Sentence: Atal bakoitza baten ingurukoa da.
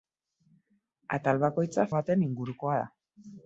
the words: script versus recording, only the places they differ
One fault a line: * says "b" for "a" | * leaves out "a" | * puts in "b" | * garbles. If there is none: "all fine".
all fine